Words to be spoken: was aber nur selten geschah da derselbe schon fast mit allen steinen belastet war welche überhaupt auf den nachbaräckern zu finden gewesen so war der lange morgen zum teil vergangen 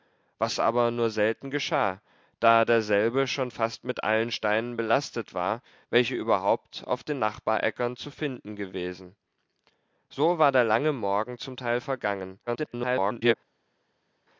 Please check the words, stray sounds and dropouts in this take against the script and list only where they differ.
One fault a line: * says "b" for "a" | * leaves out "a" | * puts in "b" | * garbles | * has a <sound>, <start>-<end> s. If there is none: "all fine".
* garbles